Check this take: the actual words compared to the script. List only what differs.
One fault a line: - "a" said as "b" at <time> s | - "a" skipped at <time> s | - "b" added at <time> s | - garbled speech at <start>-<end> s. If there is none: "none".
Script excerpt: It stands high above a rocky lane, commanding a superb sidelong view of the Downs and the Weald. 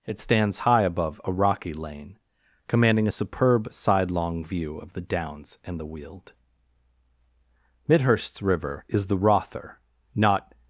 - "Midhurst's river is the Rother not" added at 7.9 s